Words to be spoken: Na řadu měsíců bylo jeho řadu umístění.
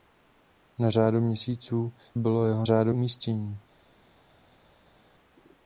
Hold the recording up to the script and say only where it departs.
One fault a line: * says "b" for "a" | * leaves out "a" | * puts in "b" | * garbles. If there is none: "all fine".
all fine